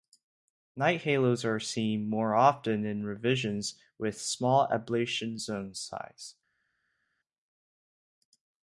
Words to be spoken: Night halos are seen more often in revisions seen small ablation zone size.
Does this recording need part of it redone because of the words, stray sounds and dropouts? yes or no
yes